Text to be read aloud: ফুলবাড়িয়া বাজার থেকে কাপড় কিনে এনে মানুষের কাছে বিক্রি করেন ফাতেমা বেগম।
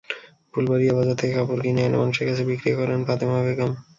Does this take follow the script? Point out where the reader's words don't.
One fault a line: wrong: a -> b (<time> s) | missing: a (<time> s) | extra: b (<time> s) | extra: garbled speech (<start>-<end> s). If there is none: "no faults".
no faults